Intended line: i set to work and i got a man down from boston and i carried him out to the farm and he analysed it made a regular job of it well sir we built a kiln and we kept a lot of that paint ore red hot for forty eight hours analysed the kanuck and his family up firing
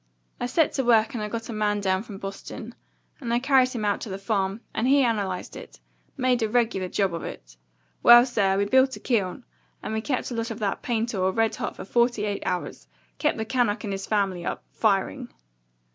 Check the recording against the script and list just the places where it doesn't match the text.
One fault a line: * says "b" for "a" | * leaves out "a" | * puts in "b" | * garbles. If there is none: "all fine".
* says "kept" for "analysed"